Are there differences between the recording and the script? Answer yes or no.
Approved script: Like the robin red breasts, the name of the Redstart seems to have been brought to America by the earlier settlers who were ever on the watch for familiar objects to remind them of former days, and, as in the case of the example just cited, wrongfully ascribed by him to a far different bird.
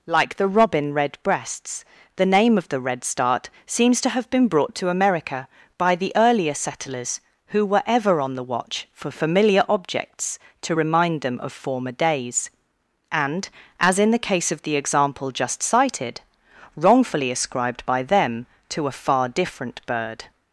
yes